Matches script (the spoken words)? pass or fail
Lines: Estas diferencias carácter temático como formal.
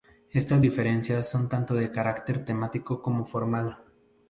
fail